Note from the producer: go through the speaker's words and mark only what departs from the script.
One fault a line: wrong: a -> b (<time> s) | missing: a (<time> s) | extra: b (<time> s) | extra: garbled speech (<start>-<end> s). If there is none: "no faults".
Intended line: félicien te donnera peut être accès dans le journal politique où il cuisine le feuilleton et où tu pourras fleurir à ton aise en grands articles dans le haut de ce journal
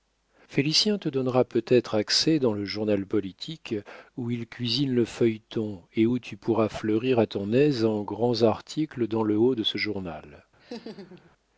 no faults